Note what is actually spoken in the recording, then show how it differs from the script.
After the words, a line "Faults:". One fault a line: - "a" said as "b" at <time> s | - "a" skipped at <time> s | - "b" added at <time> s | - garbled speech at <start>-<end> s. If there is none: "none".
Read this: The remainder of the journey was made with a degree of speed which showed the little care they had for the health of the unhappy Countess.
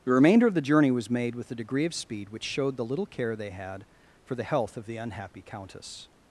The remainder of the journey was made with a degree of speed which showed the little care they had for the health of the unhappy Countess.
Faults:
none